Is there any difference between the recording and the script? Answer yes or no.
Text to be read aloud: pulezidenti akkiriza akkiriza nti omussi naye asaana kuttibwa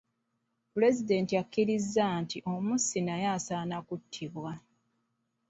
yes